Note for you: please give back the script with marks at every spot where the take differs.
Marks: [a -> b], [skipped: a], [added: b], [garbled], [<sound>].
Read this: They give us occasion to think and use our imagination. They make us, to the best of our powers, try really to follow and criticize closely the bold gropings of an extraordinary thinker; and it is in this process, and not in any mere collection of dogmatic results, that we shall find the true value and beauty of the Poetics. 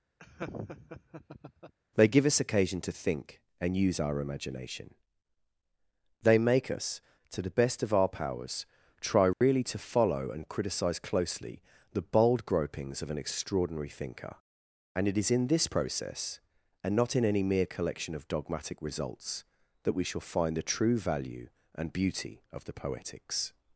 [laugh] They give us occasion to think and use our imagination. They make us, to the best of our powers, try really [dropout] to follow and criticize closely the bold gropings of an extraordinary thinker; and it is in this process, and not in any mere collection of dogmatic results, that we shall find the true value and beauty of the Poetics.